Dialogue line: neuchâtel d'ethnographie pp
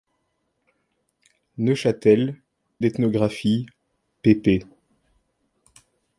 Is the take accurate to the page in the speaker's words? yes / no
yes